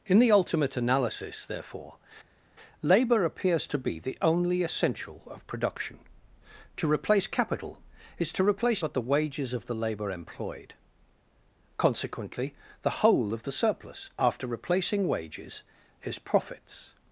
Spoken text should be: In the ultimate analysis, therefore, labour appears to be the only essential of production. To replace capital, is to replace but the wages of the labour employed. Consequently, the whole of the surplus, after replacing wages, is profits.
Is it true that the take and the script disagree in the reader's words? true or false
false